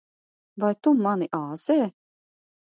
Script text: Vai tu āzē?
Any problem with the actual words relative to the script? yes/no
yes